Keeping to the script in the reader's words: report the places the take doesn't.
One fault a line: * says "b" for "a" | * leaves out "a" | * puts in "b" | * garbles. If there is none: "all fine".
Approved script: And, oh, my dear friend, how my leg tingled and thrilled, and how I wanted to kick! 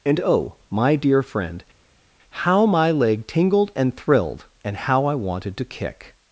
all fine